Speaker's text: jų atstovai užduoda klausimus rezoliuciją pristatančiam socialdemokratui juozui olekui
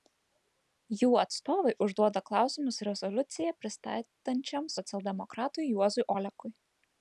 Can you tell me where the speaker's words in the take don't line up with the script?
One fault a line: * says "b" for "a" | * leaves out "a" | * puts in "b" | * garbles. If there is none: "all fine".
all fine